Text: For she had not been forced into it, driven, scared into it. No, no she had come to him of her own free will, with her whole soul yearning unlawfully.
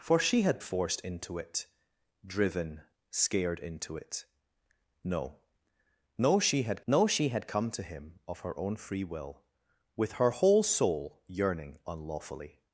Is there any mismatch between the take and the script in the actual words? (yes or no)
yes